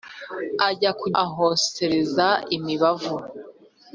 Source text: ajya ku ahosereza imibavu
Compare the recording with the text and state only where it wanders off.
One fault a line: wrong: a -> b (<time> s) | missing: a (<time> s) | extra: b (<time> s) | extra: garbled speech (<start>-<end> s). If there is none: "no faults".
no faults